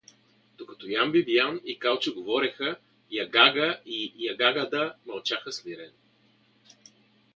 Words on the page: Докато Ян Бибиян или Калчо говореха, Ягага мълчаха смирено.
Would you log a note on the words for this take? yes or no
yes